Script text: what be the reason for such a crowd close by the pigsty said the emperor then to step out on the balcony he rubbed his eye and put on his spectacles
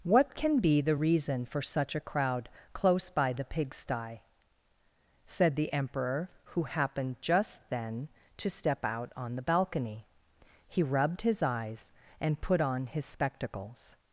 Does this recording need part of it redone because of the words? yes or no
yes